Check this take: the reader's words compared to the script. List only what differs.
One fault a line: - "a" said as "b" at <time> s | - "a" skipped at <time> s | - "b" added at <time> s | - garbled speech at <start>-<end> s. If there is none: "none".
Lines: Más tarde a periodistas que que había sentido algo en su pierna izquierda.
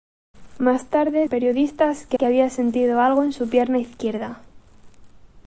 none